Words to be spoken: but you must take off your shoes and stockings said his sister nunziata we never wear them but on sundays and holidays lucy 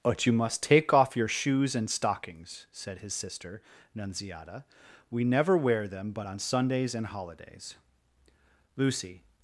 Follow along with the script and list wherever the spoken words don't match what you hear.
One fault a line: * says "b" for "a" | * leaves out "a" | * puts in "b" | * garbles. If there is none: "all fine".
all fine